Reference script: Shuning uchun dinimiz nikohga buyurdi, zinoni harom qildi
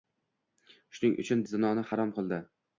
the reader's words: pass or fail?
fail